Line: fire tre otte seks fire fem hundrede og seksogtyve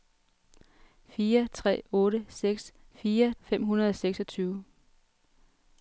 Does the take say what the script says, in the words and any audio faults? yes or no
yes